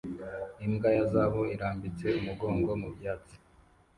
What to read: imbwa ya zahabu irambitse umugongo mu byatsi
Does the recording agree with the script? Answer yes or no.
yes